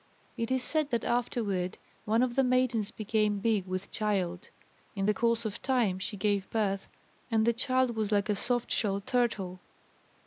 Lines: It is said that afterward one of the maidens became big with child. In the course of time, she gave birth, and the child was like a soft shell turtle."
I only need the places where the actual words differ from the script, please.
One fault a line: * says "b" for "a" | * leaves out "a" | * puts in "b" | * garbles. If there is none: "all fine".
all fine